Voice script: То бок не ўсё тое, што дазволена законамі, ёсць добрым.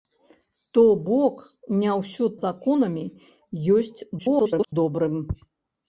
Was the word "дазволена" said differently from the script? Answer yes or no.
yes